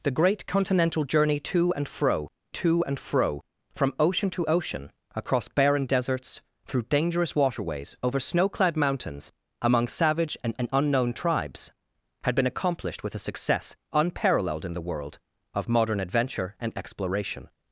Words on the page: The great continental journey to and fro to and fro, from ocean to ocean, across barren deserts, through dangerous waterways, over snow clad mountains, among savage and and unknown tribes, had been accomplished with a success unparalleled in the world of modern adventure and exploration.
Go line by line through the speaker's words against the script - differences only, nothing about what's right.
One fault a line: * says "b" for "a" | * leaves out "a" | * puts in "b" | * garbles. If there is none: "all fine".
all fine